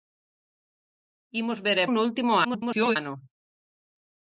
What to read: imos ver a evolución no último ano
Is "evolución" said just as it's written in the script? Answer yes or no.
no